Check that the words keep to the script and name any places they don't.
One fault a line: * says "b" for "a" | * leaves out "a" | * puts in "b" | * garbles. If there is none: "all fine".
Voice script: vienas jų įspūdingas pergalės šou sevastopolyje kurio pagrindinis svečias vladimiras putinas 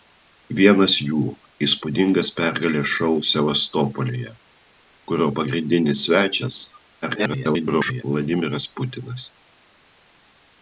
* garbles